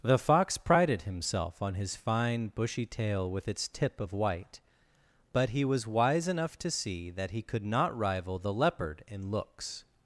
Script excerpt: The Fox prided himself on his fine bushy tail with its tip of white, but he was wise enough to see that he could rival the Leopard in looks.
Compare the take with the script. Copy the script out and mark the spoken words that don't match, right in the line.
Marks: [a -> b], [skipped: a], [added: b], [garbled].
The Fox prided himself on his fine bushy tail with its tip of white, but he was wise enough to see that he could [added: not] rival the Leopard in looks.